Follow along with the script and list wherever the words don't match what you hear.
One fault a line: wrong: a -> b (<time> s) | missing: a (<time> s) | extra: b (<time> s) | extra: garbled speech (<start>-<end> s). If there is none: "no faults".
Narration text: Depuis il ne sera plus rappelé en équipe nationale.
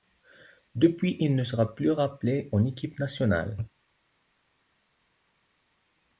no faults